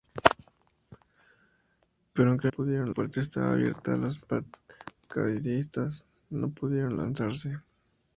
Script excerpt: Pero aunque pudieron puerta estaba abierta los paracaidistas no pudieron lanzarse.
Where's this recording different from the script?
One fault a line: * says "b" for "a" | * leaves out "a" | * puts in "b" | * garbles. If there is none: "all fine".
all fine